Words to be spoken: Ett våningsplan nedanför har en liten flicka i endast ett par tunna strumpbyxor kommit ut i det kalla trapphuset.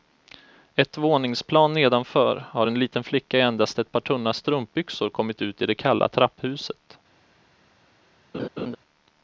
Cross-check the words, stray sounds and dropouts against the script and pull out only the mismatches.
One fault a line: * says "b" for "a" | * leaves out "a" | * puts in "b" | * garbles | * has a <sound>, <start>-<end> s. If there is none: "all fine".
* has a laugh, 8.3-8.8 s